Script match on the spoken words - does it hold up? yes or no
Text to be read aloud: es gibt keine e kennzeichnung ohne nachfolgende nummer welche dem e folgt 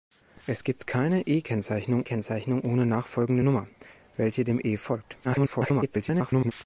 no